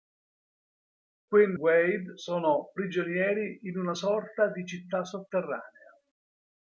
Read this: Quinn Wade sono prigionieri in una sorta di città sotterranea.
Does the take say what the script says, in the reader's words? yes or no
yes